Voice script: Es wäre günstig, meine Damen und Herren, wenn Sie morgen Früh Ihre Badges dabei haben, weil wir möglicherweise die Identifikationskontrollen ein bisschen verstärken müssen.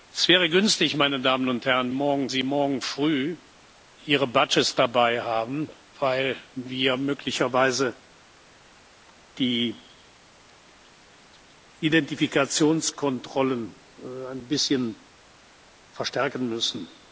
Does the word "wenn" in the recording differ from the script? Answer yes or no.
yes